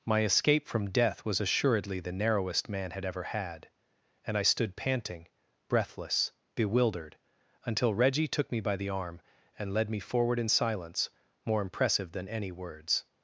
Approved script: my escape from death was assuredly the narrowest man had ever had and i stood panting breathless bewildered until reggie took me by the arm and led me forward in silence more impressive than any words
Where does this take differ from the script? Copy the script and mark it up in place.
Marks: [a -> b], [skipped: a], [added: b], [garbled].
my escape from death was assuredly the narrowest man had ever had and i stood panting breathless bewildered until reggie took me by the arm and led me forward in silence more impressive than any words